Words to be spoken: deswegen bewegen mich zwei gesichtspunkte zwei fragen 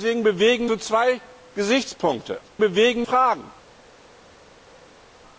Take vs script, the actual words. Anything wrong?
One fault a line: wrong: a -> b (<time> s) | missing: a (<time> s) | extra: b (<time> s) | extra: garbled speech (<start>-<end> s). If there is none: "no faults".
missing: mich (0.7 s)
wrong: zwei -> bewegen (2.6 s)